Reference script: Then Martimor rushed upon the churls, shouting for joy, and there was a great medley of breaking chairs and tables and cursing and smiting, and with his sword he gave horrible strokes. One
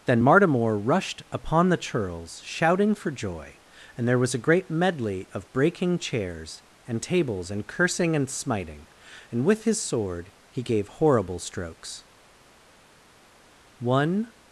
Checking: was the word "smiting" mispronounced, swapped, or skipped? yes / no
no